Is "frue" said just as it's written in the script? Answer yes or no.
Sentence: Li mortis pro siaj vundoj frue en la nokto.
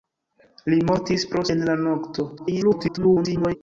no